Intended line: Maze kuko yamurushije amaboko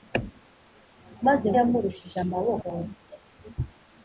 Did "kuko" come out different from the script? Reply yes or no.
yes